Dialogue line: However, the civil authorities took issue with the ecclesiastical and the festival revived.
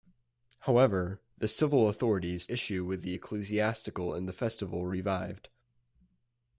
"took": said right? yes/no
no